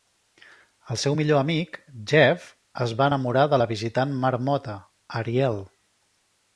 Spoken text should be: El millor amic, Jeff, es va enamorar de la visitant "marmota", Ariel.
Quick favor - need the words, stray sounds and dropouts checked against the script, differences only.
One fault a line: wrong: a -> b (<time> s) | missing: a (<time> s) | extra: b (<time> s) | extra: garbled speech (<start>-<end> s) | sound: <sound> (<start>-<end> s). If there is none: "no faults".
extra: seu (1.0 s)